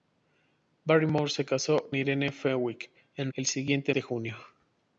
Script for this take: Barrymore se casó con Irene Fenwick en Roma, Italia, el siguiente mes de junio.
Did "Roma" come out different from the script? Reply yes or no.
yes